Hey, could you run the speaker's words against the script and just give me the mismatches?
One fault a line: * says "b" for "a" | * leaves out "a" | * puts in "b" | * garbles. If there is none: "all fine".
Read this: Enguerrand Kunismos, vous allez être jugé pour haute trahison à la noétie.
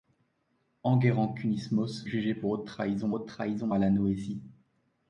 * says "jugé pour haute trahison" for "vous allez être jugé pour"